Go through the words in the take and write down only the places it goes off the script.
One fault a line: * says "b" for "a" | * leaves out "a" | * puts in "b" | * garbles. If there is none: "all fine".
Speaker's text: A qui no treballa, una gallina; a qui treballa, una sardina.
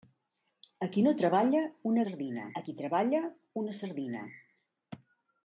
* says "sardina" for "gallina"